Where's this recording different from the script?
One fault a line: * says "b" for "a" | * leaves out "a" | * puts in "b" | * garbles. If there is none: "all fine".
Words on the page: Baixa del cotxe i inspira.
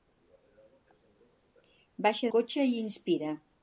* leaves out "del"